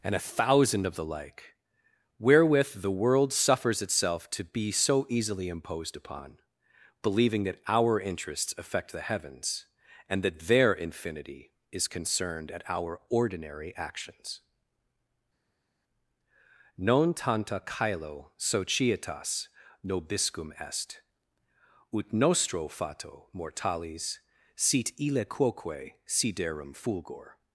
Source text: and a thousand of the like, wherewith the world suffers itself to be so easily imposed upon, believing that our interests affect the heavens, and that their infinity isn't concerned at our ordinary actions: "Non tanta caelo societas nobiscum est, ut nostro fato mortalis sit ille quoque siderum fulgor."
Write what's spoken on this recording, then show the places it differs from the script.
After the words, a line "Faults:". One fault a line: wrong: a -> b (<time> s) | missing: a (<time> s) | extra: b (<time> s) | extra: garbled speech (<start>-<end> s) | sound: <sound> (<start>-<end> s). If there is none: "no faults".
and a thousand of the like, wherewith the world suffers itself to be so easily imposed upon, believing that our interests affect the heavens, and that their infinity is concerned at our ordinary actions: "Non tanta caelo societas nobiscum est, ut nostro fato mortalis sit ille quoque siderum fulgor."
Faults:
wrong: isn't -> is (11.7 s)